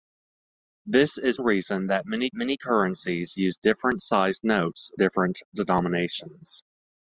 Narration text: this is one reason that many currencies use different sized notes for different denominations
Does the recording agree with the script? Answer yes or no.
no